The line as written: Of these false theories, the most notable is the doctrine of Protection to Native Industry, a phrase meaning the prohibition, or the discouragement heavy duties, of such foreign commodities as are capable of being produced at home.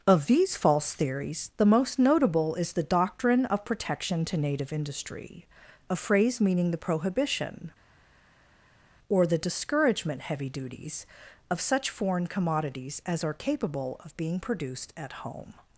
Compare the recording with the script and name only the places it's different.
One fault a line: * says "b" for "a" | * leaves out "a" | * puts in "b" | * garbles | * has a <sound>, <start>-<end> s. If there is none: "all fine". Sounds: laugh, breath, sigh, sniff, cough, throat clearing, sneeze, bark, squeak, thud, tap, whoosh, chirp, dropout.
all fine